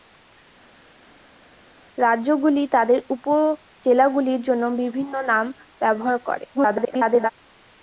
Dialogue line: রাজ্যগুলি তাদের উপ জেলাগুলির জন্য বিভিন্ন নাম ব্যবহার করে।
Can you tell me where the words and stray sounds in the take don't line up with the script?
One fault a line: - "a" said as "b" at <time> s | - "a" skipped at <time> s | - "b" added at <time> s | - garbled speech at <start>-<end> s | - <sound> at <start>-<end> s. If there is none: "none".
- garbled speech at 6.5-7.3 s